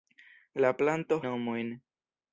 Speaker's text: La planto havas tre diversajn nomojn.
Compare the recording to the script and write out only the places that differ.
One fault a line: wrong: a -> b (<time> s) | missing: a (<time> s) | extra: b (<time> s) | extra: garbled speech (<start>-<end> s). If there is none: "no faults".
missing: havas tre diversajn (1.2 s)